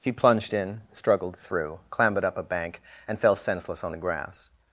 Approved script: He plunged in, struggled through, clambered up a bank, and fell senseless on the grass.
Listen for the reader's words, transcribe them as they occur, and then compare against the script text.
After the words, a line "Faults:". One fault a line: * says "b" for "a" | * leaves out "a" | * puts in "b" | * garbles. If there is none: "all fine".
He plunged in, struggled through, clambered up a bank, and fell senseless on the grass.
Faults:
all fine